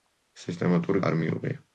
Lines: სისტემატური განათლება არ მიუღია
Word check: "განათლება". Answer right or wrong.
wrong